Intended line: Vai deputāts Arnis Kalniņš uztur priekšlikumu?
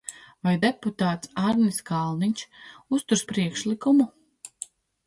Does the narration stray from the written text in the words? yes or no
no